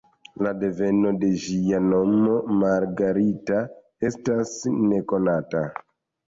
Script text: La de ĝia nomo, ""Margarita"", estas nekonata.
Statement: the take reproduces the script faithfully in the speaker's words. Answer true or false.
false